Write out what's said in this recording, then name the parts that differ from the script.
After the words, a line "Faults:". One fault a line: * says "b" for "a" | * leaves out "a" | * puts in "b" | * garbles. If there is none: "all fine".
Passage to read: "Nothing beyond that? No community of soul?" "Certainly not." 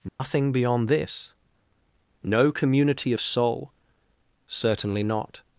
"Nothing beyond this? No community of soul?" "Certainly not."
Faults:
* says "this" for "that"